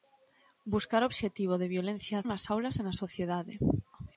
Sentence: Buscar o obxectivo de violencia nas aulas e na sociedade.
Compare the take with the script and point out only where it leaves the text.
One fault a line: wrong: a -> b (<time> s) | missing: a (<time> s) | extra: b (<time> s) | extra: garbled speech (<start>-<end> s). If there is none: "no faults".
no faults